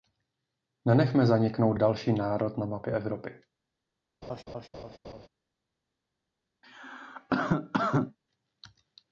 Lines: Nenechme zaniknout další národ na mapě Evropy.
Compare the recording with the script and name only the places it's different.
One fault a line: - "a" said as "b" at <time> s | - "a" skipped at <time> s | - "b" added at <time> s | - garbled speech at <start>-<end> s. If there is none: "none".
none